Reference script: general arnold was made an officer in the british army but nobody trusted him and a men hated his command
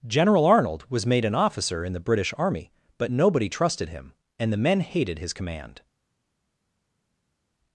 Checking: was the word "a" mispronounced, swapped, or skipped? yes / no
yes